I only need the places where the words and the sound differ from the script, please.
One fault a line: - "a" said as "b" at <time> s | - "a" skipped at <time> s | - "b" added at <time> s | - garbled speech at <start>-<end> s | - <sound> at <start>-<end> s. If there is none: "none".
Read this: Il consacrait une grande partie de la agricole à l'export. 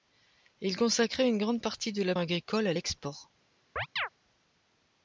- chirp at 3.8-4.1 s